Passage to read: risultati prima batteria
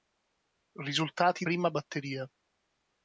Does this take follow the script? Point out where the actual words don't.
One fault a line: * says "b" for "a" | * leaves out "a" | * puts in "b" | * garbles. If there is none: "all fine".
all fine